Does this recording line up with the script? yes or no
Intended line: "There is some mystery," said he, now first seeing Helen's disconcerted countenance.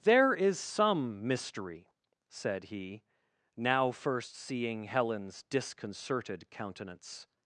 yes